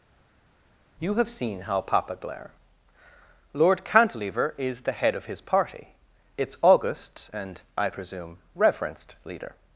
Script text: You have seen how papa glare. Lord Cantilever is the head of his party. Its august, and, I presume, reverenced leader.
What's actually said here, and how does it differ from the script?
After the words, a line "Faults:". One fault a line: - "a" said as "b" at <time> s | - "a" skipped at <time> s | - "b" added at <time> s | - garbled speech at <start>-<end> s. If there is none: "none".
You have seen how papa glare. Lord Cantilever is the head of his party. Its august, and, I presume, reverenced leader.
Faults:
none